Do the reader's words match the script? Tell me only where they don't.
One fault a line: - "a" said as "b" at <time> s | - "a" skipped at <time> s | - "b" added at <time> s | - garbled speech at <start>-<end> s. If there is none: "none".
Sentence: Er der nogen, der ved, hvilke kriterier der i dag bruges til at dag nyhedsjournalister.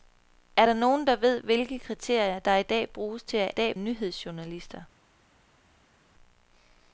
none